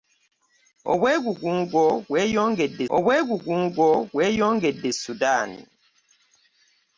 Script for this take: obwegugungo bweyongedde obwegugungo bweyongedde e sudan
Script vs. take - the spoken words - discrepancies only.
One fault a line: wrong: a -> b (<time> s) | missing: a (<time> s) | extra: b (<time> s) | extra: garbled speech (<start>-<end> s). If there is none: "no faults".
no faults